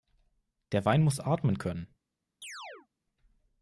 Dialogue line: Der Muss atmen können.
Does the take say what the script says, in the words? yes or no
no